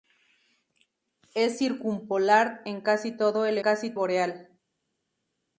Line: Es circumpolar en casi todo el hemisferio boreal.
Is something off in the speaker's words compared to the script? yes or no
yes